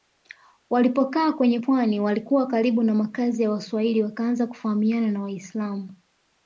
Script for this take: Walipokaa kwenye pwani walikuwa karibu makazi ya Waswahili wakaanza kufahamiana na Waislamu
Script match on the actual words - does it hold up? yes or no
no